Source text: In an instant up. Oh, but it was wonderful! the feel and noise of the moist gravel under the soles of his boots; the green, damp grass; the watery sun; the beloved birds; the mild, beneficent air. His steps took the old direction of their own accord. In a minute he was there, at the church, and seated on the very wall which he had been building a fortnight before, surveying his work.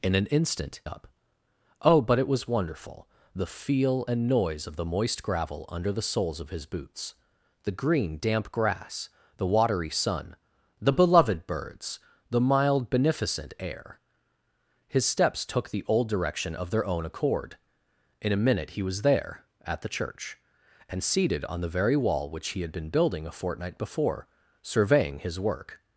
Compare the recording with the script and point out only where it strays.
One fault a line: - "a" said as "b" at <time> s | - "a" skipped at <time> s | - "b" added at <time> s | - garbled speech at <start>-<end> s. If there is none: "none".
none